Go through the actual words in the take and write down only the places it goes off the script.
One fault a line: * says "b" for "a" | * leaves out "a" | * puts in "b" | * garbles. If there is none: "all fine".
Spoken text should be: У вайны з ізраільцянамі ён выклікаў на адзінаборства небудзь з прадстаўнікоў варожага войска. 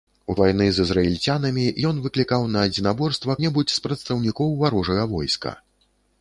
all fine